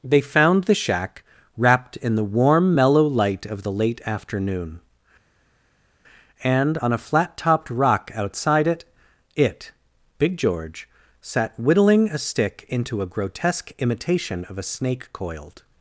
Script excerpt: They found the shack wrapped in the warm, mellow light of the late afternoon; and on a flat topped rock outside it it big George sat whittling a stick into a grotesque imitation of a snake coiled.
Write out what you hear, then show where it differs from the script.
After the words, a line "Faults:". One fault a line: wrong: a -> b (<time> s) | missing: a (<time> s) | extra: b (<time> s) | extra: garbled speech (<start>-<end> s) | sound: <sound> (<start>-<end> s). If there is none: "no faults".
They found the shack wrapped in the warm, mellow light of the late afternoon; and on a flat topped rock outside it it big George sat whittling a stick into a grotesque imitation of a snake coiled.
Faults:
no faults